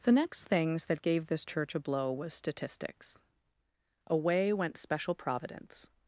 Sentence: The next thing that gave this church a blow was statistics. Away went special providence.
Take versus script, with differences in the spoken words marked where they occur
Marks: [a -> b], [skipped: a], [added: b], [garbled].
The next [thing -> things] that gave this church a blow was statistics. Away went special providence.